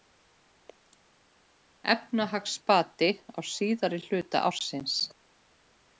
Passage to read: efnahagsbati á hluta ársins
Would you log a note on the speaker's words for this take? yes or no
yes